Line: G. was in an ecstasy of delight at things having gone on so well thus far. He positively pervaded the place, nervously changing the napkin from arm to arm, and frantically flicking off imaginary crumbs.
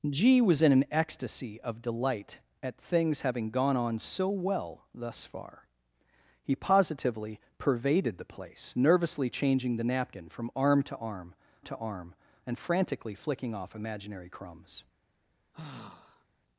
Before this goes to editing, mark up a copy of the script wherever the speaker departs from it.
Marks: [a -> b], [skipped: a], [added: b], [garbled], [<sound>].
G. was in an ecstasy of delight at things having gone on so well thus far. He positively pervaded the place, nervously changing the napkin from arm to arm, [added: to arm] and frantically flicking off imaginary crumbs. [sigh]